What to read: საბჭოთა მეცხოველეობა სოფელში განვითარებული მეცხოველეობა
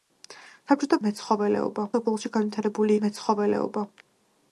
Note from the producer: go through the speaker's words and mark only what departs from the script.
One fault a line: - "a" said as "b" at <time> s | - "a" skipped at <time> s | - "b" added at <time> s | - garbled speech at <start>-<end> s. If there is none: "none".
none